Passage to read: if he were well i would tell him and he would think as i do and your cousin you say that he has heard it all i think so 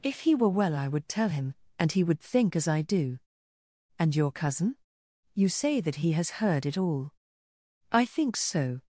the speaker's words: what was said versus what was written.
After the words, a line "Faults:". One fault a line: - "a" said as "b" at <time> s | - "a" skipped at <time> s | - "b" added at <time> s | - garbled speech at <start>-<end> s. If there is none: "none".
if he were well i would tell him and he would think as i do and your cousin you say that he has heard it all i think so
Faults:
none